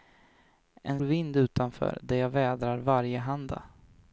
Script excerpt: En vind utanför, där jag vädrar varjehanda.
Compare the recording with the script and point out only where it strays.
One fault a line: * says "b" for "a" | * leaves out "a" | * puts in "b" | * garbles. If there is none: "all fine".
all fine